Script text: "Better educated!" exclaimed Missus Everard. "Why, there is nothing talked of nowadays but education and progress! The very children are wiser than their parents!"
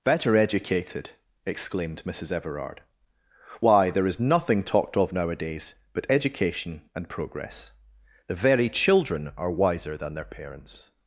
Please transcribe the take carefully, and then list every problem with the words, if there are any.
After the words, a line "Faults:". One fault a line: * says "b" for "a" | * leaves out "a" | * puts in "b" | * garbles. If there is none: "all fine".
"Better educated!" exclaimed Missus Everard. "Why, there is nothing talked of nowadays but education and progress! The very children are wiser than their parents!"
Faults:
all fine